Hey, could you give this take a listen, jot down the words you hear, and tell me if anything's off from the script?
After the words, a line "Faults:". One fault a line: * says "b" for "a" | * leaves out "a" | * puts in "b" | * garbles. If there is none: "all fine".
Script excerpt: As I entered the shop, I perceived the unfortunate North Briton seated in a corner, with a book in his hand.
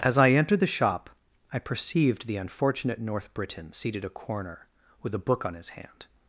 As I entered the shop, I perceived the unfortunate North Briton seated a corner, with a book on his hand.
Faults:
* leaves out "in"
* says "on" for "in"